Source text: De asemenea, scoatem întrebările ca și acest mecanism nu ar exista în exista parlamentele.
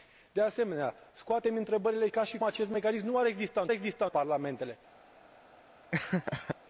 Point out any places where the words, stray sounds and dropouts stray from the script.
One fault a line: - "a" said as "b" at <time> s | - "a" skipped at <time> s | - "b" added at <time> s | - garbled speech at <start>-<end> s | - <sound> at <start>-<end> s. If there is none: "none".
- laugh at 5.9-6.6 s